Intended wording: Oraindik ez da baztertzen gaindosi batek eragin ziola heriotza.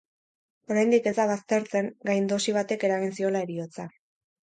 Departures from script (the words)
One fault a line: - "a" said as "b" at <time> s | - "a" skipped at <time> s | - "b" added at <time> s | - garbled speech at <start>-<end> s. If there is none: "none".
none